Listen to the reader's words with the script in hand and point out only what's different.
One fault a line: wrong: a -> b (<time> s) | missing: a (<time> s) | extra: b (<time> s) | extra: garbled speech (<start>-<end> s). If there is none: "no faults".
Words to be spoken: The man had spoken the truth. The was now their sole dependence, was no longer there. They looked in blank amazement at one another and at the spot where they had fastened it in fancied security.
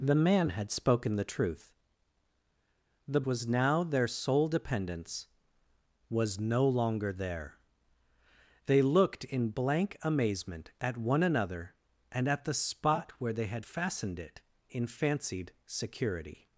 no faults